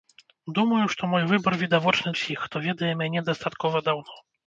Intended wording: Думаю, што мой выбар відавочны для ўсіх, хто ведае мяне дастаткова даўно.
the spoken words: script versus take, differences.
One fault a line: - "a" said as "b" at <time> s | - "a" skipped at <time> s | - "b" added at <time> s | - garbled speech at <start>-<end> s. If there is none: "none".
- "для" skipped at 2.1 s